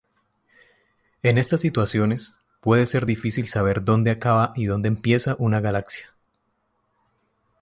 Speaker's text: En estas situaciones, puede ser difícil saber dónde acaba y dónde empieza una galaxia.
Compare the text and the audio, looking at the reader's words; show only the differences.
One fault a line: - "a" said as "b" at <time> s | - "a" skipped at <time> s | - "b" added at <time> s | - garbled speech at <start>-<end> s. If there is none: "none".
none